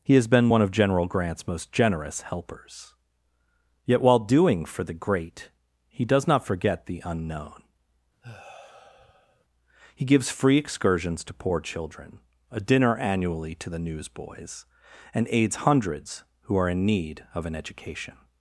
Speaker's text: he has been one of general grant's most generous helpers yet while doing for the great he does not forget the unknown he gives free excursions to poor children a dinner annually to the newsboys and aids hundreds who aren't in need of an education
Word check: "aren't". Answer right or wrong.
wrong